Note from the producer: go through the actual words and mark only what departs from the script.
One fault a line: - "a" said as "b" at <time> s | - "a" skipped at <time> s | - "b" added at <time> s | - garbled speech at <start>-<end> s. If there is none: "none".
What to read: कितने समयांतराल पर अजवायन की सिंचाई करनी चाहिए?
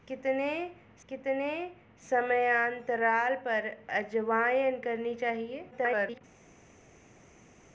- "कितने" added at 1.1 s
- "की सिंचाई" skipped at 4.8 s
- garbled speech at 5.7-6.2 s